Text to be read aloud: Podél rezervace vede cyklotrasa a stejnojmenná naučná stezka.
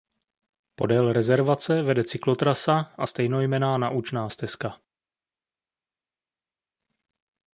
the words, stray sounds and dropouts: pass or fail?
pass